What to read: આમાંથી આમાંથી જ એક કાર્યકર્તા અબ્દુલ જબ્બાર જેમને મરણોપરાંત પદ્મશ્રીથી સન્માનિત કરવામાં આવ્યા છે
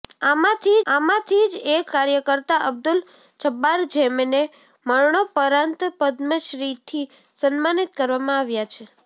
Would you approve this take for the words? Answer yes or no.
yes